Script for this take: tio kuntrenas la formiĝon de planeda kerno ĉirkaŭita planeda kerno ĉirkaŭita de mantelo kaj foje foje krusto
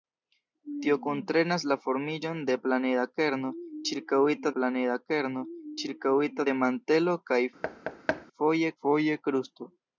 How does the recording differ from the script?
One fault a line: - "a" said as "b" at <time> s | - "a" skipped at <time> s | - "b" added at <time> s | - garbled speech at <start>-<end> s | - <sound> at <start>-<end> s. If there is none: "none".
- thud at 7.6-8.3 s